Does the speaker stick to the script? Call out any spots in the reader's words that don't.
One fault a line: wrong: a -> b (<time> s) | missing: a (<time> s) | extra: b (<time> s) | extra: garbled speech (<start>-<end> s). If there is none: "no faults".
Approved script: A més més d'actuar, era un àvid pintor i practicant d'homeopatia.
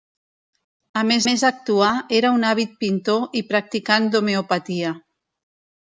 no faults